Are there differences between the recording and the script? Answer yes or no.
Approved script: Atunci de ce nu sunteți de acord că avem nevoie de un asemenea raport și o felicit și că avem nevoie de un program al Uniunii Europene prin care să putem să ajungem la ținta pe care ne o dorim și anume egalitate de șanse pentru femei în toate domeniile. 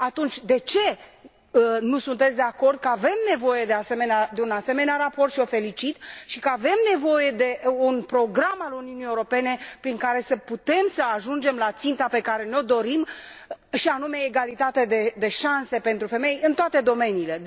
no